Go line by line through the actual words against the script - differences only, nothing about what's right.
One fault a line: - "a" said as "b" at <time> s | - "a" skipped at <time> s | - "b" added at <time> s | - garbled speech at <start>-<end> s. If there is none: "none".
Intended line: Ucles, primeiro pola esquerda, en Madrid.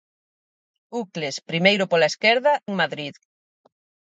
none